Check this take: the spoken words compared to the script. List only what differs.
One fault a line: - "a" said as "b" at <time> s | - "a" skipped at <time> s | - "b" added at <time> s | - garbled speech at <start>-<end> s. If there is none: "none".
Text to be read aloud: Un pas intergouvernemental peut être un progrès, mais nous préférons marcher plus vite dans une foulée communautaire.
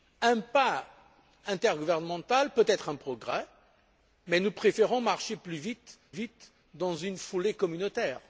- "vite" added at 6.1 s